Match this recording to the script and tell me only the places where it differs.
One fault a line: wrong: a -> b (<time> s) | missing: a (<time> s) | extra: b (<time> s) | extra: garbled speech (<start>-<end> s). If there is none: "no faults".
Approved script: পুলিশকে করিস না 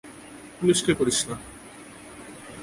no faults